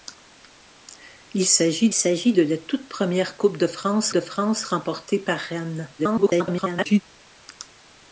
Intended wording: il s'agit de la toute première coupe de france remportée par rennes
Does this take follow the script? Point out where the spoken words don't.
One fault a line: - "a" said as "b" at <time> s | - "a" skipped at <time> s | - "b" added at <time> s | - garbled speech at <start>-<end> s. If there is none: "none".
- "s'agit" added at 1.9 s
- "de france" added at 4.1 s
- garbled speech at 6.0-7.0 s